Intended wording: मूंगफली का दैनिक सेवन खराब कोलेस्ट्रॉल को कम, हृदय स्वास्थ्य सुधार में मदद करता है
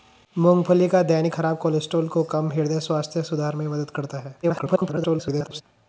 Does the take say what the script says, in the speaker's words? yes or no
no